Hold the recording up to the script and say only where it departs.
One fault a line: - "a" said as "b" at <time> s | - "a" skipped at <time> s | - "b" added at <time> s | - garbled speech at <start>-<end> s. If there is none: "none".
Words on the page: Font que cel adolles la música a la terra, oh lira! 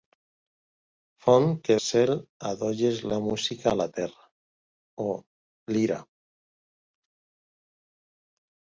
none